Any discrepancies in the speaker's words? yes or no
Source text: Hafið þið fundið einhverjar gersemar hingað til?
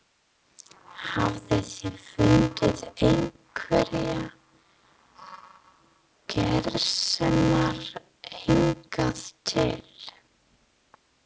no